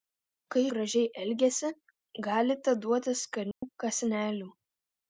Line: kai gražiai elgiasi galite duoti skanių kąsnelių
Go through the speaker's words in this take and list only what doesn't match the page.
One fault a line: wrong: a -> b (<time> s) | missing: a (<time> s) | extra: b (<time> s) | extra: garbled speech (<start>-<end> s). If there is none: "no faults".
no faults